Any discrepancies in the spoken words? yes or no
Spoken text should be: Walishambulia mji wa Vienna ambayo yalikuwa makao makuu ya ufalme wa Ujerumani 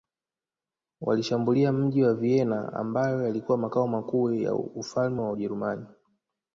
no